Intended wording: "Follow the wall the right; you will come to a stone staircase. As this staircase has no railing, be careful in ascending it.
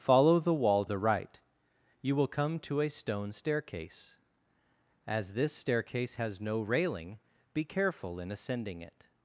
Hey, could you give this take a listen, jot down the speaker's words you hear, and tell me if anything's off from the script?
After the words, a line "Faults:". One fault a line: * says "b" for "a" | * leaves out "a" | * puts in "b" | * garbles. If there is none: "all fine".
"Follow the wall the right; you will come to a stone staircase. As this staircase has no railing, be careful in ascending it.
Faults:
all fine